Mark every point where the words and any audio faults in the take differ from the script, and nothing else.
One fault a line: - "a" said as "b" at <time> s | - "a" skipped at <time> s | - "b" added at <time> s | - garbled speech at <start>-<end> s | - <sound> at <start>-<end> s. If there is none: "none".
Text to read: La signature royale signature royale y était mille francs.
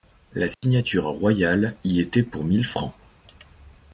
- dropout at 0.5-0.6 s
- "signature royale" skipped at 1.8 s
- "pour" added at 2.2 s